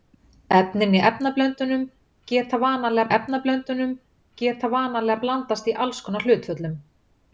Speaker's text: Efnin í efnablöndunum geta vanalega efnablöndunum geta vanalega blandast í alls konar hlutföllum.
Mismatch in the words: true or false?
false